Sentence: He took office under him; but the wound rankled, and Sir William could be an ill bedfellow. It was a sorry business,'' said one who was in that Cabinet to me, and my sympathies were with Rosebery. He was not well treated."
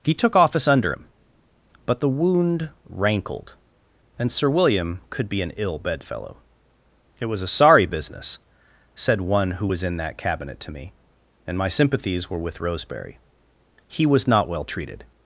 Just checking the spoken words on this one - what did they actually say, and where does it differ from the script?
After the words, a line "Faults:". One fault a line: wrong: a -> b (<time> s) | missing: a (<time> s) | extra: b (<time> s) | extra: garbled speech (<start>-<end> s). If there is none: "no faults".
He took office under him; but the wound rankled, and Sir William could be an ill bedfellow. It was a sorry business,'' said one who was in that Cabinet to me, and my sympathies were with Rosebery. He was not well treated."
Faults:
no faults